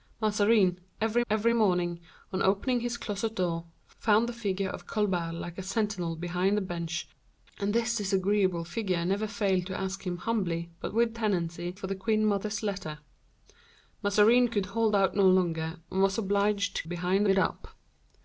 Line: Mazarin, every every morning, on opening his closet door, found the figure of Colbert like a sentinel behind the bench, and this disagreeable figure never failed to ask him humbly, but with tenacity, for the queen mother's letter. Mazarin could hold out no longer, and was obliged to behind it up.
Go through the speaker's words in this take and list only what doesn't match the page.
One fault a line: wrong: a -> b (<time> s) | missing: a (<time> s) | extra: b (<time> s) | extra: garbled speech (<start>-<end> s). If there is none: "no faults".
no faults